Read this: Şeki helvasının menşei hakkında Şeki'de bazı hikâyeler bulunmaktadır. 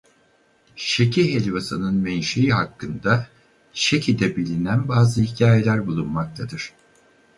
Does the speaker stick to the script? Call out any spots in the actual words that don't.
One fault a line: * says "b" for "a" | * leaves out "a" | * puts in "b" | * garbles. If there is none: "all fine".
* puts in "bilinen"